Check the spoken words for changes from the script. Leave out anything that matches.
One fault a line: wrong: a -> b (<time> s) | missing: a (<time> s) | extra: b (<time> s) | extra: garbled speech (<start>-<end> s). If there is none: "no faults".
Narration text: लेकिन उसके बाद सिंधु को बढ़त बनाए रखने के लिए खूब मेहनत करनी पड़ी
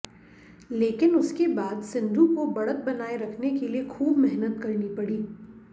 no faults